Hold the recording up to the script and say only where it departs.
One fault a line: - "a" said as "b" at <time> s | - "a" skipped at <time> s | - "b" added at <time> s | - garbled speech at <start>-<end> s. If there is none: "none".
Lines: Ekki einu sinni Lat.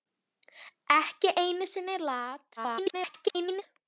- garbled speech at 2.6-3.6 s